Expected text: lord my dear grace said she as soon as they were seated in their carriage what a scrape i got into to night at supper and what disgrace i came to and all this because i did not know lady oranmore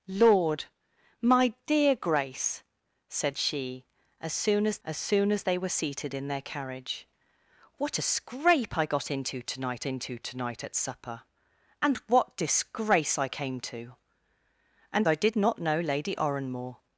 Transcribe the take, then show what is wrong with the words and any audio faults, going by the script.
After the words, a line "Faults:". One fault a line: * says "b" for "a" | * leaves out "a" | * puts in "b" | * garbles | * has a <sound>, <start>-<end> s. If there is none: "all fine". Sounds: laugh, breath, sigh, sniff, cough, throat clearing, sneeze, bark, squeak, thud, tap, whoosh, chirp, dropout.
lord my dear grace said she as soon as as soon as they were seated in their carriage what a scrape i got into to night into to night at supper and what disgrace i came to and i did not know lady oranmore
Faults:
* puts in "as soon as"
* puts in "into to night"
* leaves out "all this because"